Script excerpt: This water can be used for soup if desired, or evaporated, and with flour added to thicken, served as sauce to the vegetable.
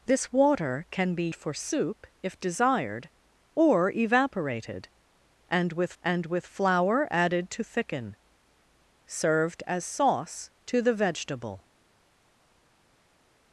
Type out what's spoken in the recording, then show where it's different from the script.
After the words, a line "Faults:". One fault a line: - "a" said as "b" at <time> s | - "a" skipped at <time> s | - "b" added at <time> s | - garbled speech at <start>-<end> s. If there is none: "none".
This water can be for soup if desired, or evaporated, and with and with flour added to thicken, served as sauce to the vegetable.
Faults:
- "used" skipped at 1.3 s
- "and with" added at 6.0 s